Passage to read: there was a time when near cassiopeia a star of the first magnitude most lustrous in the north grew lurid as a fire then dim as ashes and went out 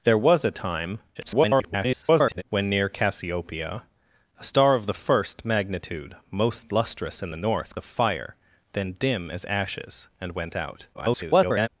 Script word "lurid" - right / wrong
wrong